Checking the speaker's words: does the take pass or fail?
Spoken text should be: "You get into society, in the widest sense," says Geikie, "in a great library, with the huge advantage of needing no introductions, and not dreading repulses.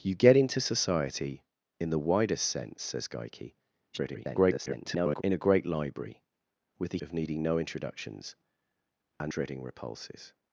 fail